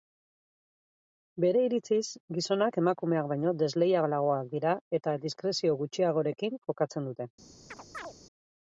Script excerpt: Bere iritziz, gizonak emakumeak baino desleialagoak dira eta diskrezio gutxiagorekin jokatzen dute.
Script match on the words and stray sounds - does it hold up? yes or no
no